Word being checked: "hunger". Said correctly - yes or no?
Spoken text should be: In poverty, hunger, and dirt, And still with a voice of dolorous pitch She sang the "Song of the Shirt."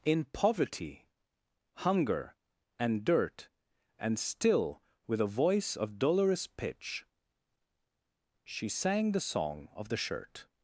yes